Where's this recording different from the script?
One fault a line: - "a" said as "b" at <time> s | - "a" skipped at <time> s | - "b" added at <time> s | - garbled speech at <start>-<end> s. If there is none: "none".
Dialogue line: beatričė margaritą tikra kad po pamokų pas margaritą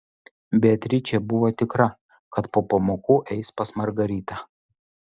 - "margaritą" said as "buvo" at 1.3 s
- "eis" added at 3.4 s